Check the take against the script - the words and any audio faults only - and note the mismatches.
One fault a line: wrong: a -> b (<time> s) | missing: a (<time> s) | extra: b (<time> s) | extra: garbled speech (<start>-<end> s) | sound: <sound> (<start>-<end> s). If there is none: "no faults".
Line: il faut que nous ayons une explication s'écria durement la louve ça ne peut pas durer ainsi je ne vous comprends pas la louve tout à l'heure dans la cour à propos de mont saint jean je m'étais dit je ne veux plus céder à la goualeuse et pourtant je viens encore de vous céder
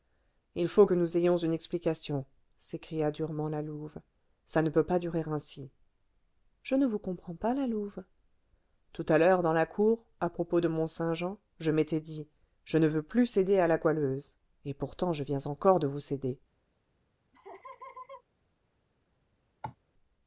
sound: laugh (17.3-18.2 s)
sound: cough (19.6-19.8 s)